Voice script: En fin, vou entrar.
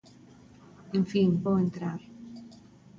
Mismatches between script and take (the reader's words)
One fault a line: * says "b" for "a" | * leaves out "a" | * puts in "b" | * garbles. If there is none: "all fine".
all fine